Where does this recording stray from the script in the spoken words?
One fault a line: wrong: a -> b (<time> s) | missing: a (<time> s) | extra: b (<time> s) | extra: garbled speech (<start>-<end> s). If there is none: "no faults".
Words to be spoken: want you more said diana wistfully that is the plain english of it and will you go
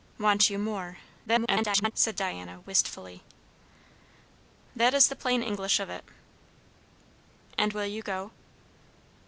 extra: garbled speech (1.3-1.9 s)